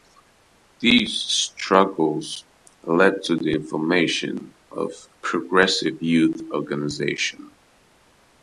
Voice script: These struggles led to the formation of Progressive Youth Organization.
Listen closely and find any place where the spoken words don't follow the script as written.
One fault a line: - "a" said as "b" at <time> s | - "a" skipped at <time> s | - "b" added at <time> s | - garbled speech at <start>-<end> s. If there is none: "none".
none